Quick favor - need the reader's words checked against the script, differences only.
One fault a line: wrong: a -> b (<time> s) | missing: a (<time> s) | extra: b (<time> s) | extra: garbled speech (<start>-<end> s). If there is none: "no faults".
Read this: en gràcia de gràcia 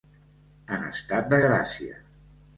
wrong: gràcia -> estat (0.9 s)